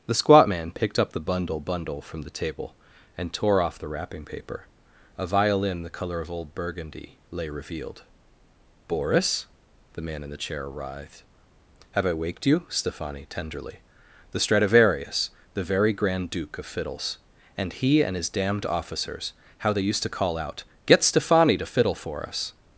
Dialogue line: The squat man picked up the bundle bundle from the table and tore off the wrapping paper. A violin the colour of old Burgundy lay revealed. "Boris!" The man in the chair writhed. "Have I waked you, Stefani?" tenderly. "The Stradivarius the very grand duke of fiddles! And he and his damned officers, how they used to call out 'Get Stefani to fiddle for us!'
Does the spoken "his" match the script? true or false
true